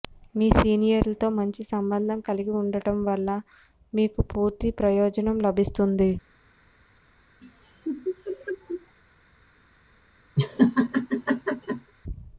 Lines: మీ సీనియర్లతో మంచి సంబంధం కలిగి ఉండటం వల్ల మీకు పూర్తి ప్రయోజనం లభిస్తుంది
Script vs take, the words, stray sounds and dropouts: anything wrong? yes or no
yes